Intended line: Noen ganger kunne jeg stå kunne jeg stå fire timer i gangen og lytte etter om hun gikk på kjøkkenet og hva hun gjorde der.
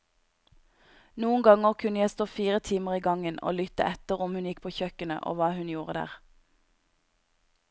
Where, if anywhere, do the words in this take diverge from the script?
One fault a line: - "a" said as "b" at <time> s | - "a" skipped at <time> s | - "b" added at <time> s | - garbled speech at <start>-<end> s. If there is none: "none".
- "kunne jeg stå" skipped at 2.2 s